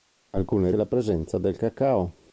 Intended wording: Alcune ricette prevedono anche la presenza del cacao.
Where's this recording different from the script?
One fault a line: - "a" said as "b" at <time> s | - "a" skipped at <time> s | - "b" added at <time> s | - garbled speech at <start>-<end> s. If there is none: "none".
- "ricette prevedono anche" skipped at 0.7 s